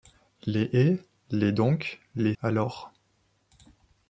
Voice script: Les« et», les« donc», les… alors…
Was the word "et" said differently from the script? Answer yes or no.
no